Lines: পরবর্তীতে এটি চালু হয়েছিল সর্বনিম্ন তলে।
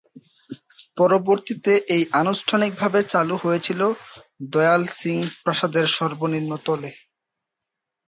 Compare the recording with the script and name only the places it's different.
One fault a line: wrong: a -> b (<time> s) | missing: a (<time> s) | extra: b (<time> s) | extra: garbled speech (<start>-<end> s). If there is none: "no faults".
extra: আনুষ্ঠানিকভাবে (2.2 s)
extra: দয়াল সিং প্রাসাদের (4.5 s)